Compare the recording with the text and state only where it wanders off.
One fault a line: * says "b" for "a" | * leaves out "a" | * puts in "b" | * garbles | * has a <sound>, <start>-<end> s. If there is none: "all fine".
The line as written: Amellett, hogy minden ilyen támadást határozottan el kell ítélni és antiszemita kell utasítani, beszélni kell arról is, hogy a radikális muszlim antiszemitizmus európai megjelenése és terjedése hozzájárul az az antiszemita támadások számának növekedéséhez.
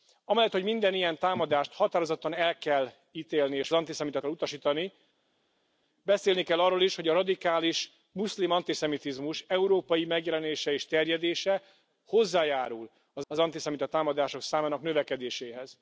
all fine